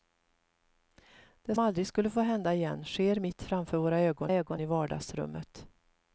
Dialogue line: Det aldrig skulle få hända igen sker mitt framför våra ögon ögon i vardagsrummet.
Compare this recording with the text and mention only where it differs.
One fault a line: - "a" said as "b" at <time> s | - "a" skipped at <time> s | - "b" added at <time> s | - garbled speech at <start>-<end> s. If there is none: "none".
none